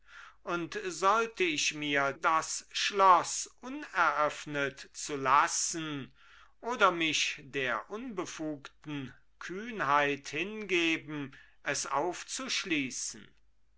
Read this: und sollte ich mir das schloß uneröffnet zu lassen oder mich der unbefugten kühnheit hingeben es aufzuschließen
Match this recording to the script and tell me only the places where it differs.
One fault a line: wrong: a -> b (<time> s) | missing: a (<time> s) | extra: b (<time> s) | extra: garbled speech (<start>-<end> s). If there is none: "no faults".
no faults